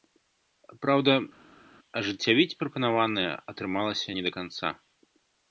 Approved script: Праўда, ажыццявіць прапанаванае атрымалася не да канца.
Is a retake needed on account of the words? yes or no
no